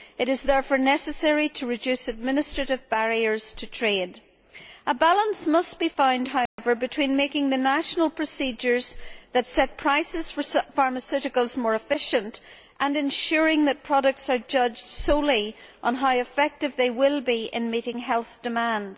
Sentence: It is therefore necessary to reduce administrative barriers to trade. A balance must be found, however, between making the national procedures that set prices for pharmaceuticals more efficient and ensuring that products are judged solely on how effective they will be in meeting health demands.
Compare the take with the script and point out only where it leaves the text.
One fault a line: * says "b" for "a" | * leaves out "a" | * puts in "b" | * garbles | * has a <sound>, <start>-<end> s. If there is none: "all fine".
* has a dropout, 6.5-6.6 s